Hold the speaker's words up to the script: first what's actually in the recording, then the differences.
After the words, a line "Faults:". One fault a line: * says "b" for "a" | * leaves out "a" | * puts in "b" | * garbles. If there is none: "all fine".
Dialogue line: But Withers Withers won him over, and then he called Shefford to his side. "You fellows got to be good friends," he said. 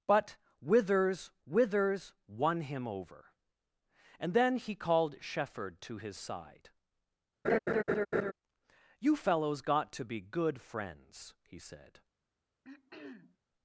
But Withers Withers won him over, and then he called Shefford to his side. "You fellows got to be good friends," he said.
Faults:
all fine